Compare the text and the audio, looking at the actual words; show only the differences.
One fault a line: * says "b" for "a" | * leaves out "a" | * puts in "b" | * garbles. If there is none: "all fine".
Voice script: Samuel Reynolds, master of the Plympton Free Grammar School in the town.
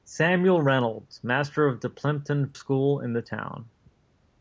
* leaves out "Free Grammar"